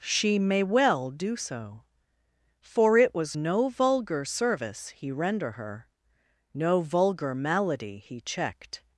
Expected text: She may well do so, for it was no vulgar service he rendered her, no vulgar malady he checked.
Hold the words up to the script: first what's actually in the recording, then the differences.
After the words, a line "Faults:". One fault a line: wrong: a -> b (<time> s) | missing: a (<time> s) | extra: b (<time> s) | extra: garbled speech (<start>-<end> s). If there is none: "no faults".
She may well do so, for it was no vulgar service he render her, no vulgar malady he checked.
Faults:
wrong: rendered -> render (5.1 s)